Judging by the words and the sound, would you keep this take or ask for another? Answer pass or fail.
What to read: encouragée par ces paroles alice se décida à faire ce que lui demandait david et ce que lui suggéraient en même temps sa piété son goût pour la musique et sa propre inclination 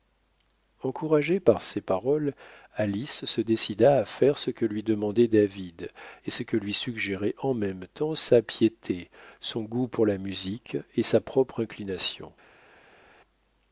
pass